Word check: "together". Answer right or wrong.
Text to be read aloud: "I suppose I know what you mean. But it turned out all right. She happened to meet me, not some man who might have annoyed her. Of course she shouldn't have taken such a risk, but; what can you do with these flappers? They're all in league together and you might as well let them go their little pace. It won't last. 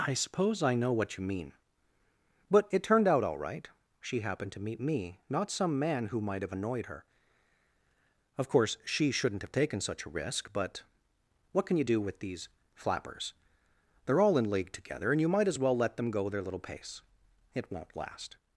right